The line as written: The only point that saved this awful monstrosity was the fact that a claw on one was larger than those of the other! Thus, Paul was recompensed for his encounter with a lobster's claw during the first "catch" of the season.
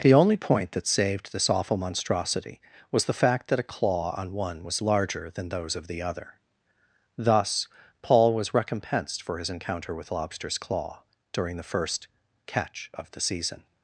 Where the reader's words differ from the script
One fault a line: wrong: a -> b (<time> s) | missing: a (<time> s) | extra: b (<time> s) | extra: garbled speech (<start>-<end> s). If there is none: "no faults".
missing: a (10.1 s)